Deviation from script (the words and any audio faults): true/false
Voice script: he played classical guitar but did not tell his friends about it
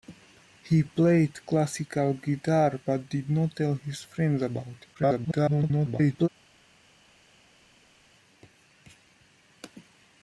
true